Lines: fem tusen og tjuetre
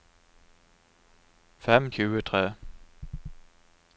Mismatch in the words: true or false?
true